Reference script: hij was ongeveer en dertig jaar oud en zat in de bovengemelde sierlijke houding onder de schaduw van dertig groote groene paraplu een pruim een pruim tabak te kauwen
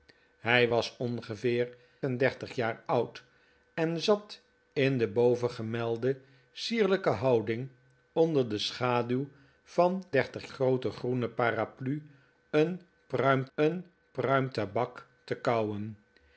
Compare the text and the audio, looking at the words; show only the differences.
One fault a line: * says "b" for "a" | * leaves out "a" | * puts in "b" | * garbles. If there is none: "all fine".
all fine